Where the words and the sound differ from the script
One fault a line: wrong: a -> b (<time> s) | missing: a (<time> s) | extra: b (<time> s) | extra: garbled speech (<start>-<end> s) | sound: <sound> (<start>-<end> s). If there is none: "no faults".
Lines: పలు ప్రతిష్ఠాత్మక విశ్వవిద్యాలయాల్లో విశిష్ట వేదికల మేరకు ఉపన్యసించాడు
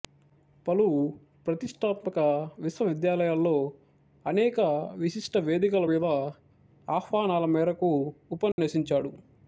extra: అనేక (4.2 s)
extra: మీద ఆహ్వానాల (5.8 s)
sound: dropout (8.5-8.6 s)